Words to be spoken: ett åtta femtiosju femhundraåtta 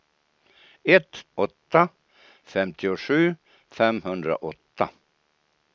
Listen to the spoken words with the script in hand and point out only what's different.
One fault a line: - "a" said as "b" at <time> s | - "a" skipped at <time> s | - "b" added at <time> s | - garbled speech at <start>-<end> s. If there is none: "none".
none